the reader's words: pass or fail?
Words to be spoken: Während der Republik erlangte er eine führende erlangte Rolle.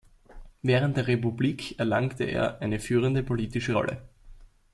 fail